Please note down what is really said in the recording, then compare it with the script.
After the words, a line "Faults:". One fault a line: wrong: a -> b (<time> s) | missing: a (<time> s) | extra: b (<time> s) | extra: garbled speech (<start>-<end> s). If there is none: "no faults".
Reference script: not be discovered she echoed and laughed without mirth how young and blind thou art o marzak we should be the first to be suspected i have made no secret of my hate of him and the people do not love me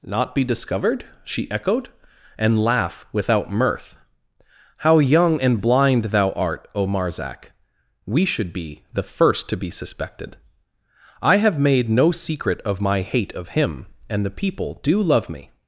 not be discovered she echoed and laugh without mirth how young and blind thou art o marzak we should be the first to be suspected i have made no secret of my hate of him and the people do love me
Faults:
wrong: laughed -> laugh (2.6 s)
missing: not (15.0 s)